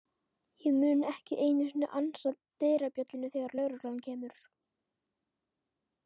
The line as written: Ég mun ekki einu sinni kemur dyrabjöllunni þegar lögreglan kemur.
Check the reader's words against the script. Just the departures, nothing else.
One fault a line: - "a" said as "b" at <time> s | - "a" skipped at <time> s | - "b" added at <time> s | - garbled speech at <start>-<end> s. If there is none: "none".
- "kemur" said as "ansa" at 2.0 s